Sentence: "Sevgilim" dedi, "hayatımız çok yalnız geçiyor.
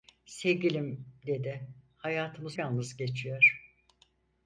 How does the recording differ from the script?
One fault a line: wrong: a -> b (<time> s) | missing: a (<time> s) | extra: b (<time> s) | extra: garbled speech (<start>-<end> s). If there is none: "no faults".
missing: çok (2.6 s)